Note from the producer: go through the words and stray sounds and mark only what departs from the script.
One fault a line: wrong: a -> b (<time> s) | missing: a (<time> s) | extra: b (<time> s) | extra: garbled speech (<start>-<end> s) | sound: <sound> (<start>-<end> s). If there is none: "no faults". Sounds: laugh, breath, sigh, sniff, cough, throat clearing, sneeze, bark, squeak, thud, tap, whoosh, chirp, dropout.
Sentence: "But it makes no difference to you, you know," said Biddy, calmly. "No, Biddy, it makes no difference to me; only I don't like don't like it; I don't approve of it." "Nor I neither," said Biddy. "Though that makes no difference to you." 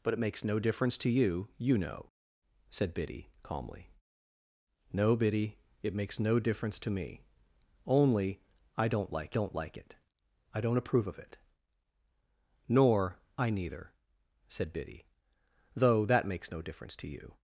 no faults